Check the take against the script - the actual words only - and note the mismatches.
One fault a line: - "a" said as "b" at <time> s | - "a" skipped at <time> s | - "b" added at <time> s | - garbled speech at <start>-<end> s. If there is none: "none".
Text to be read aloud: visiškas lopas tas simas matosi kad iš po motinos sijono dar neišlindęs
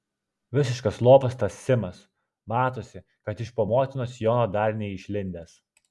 none